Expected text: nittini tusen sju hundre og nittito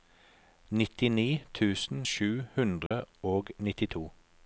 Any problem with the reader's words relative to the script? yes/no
no